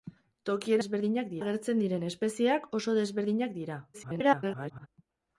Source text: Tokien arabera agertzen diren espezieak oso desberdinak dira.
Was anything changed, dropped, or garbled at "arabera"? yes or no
yes